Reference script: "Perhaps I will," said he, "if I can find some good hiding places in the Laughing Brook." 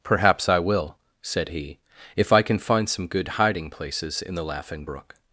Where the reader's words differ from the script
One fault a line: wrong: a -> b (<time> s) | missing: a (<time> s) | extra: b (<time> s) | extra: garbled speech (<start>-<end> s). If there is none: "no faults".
no faults